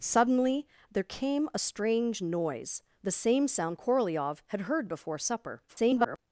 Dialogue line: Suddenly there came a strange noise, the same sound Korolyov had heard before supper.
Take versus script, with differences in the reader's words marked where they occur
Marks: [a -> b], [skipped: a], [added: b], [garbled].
Suddenly there came a strange noise, the same sound Korolyov had heard before supper. [garbled]